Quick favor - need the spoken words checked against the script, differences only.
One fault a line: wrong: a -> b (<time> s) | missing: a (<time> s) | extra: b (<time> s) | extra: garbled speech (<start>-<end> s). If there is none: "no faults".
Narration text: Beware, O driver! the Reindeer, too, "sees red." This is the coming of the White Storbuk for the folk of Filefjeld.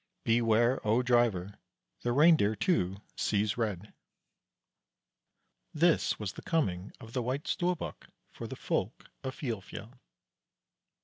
wrong: is -> was (6.2 s)